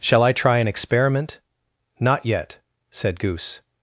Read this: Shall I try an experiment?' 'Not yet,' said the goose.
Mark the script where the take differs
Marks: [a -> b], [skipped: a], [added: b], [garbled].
Shall I try an experiment?' 'Not yet,' said [skipped: the] goose.